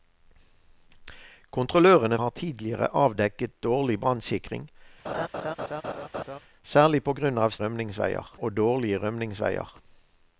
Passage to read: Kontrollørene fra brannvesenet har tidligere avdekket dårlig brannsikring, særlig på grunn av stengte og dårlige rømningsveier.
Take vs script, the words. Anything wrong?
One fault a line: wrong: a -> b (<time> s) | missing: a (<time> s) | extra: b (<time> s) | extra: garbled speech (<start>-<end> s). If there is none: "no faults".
missing: fra brannvesenet (2.2 s)
wrong: stengte -> rømningsveier (7.6 s)